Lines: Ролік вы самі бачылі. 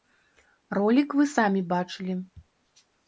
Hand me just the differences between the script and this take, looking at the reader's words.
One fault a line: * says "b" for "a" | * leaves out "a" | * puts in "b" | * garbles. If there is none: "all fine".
all fine